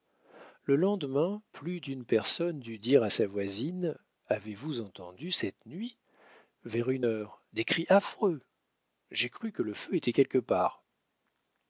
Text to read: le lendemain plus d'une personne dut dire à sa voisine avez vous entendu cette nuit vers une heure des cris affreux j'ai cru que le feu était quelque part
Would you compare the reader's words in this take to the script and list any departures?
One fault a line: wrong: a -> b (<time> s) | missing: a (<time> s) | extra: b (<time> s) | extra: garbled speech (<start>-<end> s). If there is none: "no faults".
no faults